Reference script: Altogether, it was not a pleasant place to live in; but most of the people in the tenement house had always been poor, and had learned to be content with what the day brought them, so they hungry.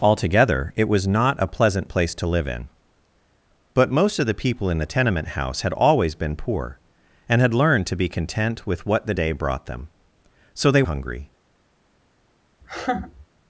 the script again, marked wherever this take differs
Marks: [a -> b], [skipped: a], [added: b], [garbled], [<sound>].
Altogether, it was not a pleasant place to live in; but most of the people in the tenement house had always been poor, and had learned to be content with what the day brought them, so they hungry. [laugh]